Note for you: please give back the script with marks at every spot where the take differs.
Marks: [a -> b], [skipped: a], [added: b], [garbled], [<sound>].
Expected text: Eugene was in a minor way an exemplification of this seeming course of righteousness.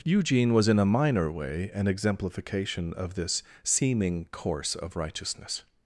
Eugene was in a minor way an exemplification of this seeming course of righteousness.